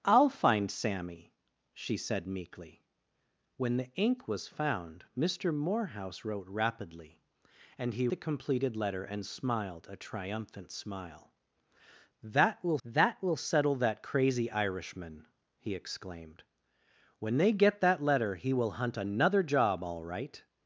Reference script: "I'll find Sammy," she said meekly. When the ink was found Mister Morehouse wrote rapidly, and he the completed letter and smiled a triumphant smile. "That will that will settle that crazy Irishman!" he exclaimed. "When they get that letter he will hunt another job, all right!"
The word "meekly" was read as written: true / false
true